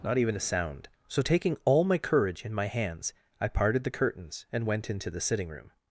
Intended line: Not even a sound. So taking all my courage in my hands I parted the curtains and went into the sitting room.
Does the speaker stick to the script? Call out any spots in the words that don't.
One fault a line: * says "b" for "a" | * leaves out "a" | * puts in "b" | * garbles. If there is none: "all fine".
all fine